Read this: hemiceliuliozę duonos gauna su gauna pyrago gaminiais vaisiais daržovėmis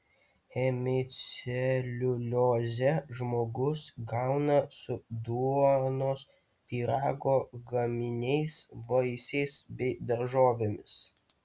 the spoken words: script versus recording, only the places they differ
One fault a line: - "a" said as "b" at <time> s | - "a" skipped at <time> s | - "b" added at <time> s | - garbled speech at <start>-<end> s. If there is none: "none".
- "duonos" said as "žmogus" at 3.2 s
- "gauna" said as "duonos" at 5.2 s
- "bei" added at 9.8 s